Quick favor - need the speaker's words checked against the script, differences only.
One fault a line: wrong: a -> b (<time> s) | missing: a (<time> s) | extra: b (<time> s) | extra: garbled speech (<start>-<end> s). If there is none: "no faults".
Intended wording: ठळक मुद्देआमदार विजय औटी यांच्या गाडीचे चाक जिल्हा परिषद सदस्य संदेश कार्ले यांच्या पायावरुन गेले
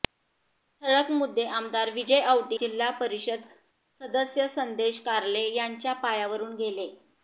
missing: यांच्या गाडीचे चाक (2.6 s)